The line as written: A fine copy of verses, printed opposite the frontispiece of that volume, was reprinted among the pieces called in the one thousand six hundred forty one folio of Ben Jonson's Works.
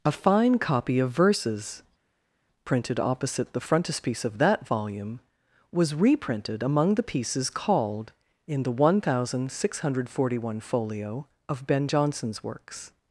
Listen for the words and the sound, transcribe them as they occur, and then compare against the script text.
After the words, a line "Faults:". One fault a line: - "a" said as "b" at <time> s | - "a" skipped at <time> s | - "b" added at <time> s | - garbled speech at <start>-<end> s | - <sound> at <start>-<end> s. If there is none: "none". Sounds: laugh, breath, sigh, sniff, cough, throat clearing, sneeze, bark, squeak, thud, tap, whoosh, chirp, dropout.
A fine copy of verses, printed opposite the frontispiece of that volume, was reprinted among the pieces called in the one thousand six hundred forty one folio of Ben Jonson's Works.
Faults:
none